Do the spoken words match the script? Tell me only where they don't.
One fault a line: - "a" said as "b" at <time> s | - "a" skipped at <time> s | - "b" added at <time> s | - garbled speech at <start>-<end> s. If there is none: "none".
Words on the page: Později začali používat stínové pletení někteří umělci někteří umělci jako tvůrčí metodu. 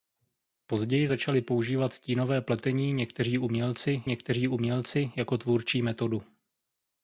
none